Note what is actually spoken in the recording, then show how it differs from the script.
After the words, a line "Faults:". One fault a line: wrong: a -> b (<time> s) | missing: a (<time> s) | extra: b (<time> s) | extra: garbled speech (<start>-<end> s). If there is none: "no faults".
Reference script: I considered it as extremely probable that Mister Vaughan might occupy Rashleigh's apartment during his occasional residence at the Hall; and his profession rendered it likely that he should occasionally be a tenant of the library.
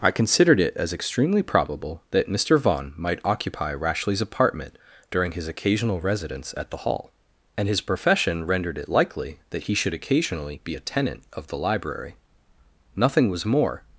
I considered it as extremely probable that Mister Vaughan might occupy Rashleigh's apartment during his occasional residence at the Hall; and his profession rendered it likely that he should occasionally be a tenant of the library. Nothing was more
Faults:
extra: Nothing was more (13.0 s)